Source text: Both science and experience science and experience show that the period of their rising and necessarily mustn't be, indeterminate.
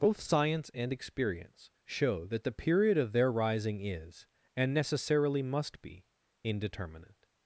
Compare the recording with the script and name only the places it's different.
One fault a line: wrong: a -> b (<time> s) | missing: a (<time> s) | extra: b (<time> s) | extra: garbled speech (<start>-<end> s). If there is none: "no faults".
missing: science and experience (1.7 s)
extra: is (3.9 s)
wrong: mustn't -> must (5.4 s)